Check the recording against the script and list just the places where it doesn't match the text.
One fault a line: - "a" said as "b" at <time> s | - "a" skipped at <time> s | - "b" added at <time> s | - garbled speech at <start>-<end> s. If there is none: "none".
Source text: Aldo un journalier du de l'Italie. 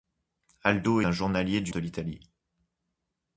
none